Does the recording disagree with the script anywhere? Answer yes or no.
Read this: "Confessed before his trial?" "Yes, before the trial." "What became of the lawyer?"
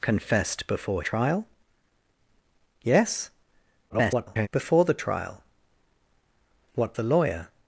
yes